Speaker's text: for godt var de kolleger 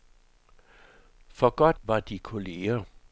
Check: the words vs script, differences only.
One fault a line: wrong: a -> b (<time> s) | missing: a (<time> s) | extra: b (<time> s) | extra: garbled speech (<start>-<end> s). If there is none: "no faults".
no faults